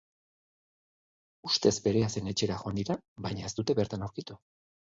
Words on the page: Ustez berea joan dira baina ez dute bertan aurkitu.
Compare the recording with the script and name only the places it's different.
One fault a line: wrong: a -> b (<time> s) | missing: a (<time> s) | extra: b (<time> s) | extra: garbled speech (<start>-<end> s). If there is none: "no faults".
extra: zen etxera (2.1 s)